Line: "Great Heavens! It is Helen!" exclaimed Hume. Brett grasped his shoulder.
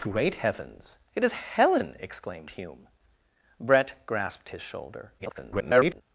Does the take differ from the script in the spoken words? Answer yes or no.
yes